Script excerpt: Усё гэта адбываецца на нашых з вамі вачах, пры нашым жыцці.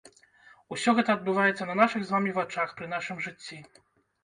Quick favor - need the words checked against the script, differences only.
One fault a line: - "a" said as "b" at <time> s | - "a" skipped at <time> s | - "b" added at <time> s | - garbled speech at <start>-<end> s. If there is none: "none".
none